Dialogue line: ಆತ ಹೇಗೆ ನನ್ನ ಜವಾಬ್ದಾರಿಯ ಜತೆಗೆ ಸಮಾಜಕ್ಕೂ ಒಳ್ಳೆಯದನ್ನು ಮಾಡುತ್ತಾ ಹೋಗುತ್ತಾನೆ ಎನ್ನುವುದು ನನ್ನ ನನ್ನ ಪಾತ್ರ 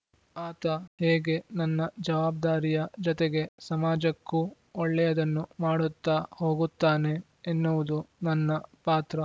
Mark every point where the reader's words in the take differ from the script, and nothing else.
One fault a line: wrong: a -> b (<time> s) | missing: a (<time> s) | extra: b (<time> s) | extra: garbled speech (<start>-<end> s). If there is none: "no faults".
missing: ನನ್ನ (8.5 s)